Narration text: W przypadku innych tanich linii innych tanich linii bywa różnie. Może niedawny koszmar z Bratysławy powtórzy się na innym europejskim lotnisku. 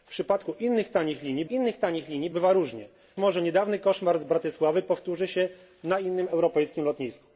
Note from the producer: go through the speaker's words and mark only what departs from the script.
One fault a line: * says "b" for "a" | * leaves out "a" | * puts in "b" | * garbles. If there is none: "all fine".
all fine